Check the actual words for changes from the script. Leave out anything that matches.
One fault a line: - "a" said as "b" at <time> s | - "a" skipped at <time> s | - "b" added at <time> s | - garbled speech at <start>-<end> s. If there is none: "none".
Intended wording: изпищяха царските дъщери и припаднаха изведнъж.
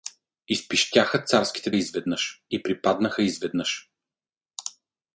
- "дъщери" said as "изведнъж" at 1.7 s